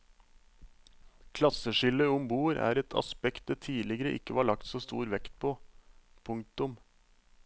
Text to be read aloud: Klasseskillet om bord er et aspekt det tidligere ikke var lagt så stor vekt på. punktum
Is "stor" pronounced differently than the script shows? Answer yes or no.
no